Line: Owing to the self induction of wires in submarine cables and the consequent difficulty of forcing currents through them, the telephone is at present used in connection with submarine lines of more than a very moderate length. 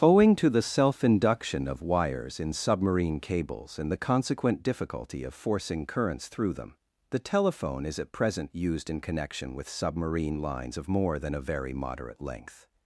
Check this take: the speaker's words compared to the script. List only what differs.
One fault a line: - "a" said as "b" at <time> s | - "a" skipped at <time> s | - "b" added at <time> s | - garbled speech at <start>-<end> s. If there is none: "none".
none